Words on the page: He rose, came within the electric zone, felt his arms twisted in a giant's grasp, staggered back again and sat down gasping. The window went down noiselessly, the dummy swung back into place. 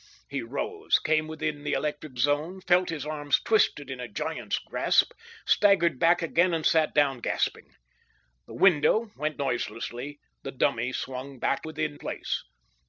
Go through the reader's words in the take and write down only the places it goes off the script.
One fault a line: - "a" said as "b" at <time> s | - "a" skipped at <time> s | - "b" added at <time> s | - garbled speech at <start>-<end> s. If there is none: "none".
- "down" skipped at 9.4 s
- "into" said as "within" at 11.6 s